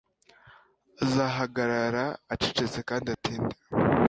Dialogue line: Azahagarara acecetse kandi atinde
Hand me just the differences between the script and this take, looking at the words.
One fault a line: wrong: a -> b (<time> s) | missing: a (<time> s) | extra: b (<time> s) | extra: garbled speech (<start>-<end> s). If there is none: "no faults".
no faults